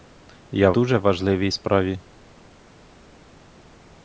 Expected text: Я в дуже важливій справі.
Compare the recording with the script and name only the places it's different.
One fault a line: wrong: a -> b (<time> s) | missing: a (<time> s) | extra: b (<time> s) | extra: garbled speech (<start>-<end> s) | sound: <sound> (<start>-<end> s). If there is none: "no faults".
missing: в (0.7 s)